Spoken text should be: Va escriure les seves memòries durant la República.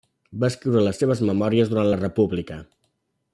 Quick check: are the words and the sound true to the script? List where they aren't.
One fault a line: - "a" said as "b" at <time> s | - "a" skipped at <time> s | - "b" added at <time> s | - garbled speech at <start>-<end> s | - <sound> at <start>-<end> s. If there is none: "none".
none